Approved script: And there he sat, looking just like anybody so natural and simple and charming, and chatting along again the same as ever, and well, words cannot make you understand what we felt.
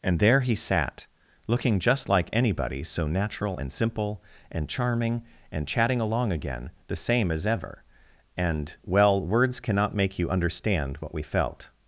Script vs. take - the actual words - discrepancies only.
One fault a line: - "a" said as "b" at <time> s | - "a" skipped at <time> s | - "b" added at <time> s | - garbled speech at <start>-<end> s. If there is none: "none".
none